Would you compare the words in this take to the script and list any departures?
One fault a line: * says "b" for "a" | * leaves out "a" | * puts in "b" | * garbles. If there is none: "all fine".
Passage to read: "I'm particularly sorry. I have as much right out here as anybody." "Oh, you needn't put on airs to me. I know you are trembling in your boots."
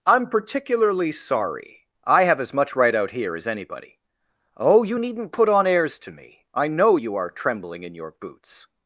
all fine